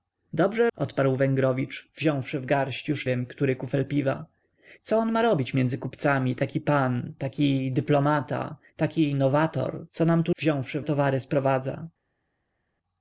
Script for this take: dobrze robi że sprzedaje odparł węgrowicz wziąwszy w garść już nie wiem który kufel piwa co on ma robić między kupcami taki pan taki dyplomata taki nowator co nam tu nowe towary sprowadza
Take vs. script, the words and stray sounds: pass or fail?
fail